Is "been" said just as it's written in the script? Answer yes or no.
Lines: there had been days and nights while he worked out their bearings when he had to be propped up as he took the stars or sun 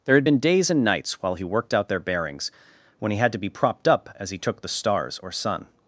yes